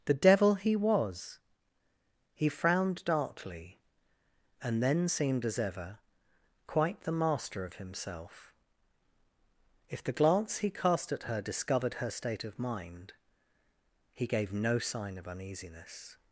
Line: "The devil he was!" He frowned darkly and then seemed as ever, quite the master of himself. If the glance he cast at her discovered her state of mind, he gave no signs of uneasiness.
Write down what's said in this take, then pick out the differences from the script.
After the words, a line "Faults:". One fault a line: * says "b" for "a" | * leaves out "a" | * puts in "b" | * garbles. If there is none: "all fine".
"The devil he was!" He frowned darkly and then seemed as ever, quite the master of himself. If the glance he cast at her discovered her state of mind, he gave no sign of uneasiness.
Faults:
* says "sign" for "signs"